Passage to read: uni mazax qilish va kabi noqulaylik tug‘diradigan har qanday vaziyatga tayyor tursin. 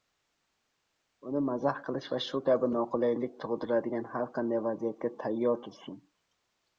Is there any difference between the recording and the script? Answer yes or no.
yes